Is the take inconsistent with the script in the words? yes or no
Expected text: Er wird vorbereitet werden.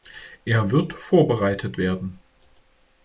no